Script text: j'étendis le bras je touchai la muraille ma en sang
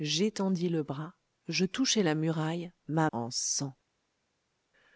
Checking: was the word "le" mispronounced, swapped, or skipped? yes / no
no